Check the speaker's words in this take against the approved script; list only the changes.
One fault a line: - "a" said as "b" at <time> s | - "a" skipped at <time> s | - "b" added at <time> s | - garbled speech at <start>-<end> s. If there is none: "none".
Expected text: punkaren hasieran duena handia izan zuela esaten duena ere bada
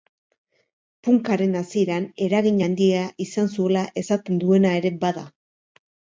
- "duena" said as "eragin" at 2.3 s